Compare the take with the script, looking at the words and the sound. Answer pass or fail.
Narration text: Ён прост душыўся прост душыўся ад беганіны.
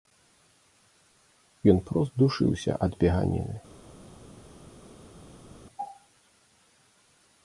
fail